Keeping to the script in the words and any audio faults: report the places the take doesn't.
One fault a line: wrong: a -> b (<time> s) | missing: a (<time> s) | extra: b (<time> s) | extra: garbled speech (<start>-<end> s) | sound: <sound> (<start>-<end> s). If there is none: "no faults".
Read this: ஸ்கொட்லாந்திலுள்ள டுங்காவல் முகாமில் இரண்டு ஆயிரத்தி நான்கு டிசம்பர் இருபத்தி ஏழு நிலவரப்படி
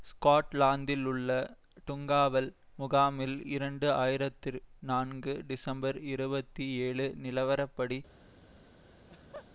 sound: laugh (9.0-9.5 s)